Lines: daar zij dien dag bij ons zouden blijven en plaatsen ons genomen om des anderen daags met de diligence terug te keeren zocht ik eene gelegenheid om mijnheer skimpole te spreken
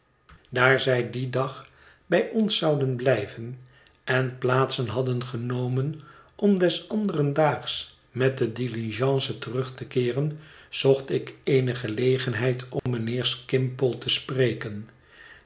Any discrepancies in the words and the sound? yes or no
yes